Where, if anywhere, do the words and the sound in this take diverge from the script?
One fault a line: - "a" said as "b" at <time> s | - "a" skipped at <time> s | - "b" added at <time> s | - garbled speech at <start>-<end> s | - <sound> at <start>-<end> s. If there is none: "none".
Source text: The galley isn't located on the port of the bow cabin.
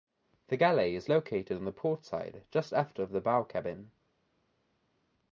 - "isn't" said as "is" at 1.0 s
- "side just aft" added at 2.0 s